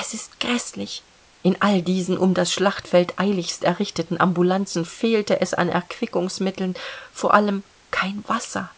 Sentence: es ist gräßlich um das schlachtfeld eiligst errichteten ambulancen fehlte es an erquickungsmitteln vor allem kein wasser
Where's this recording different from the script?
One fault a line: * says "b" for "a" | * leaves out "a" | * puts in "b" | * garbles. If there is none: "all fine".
* puts in "in all diesen"